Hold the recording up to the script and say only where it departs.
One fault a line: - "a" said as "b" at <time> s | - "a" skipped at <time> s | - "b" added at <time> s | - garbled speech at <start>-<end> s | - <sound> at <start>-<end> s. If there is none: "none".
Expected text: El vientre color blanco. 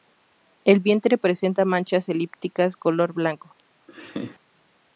- "presenta manchas elípticas" added at 1.2 s
- laugh at 3.9-4.4 s